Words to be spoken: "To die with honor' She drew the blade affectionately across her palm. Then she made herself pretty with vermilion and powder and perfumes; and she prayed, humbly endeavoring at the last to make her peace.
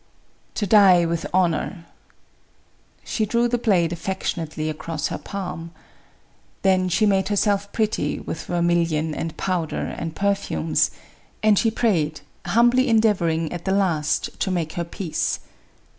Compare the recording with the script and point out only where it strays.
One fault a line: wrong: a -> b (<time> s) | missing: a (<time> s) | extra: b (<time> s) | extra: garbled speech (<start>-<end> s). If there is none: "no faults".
no faults